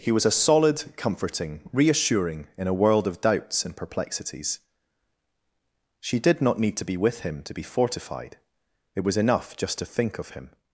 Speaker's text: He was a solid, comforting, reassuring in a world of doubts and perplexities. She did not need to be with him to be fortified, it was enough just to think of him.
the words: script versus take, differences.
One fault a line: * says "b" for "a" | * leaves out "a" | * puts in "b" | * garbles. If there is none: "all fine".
all fine